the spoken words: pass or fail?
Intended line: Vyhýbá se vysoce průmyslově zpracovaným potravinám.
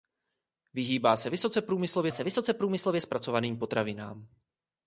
fail